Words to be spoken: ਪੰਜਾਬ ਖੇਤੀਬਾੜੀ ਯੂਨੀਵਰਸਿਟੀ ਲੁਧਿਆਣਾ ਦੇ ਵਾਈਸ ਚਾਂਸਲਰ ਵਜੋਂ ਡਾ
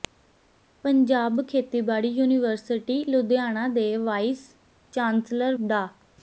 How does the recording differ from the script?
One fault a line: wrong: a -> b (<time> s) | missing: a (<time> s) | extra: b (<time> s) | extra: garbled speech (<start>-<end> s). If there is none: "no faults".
missing: ਵਜੋਂ (5.5 s)